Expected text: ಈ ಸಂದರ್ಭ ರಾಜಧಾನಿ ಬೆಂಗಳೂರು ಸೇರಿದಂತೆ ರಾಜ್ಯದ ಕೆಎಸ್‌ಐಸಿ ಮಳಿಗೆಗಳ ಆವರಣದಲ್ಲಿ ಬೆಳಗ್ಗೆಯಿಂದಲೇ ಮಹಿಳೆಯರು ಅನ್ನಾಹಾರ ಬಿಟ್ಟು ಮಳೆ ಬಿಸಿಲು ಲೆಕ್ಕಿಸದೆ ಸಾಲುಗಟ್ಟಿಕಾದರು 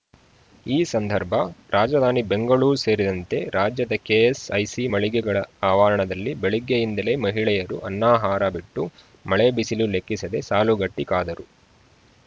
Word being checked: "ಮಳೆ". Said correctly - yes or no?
yes